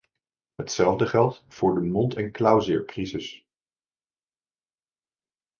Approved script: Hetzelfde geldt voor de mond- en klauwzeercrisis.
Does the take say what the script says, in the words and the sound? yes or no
yes